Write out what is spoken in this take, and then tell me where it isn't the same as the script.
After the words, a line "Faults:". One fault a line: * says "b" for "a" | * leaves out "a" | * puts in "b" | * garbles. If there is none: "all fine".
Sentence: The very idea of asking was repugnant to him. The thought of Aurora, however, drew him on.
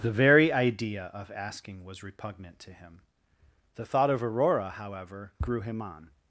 The very idea of asking was repugnant to him. The thought of Aurora, however, grew him on.
Faults:
* says "grew" for "drew"